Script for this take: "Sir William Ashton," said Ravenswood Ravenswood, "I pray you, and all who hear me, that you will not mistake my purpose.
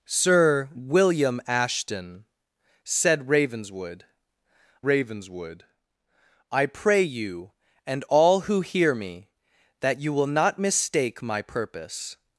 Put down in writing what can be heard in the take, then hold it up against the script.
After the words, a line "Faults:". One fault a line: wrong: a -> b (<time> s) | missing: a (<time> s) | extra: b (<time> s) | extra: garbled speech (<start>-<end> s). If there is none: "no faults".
"Sir William Ashton," said Ravenswood Ravenswood, "I pray you, and all who hear me, that you will not mistake my purpose.
Faults:
no faults